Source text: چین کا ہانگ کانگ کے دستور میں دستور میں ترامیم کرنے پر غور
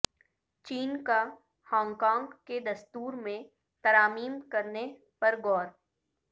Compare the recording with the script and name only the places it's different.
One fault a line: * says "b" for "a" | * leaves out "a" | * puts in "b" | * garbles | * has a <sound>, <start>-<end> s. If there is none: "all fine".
* leaves out "دستور میں"